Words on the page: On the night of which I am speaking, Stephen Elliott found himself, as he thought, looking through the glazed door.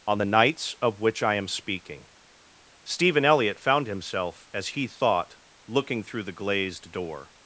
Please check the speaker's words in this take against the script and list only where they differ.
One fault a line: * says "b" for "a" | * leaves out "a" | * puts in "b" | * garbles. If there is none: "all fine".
* says "nights" for "night"